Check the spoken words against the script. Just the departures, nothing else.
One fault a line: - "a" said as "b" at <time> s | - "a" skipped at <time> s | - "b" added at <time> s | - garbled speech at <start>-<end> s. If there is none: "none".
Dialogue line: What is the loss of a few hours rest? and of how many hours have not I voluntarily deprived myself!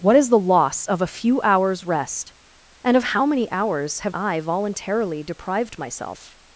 - "not" skipped at 4.2 s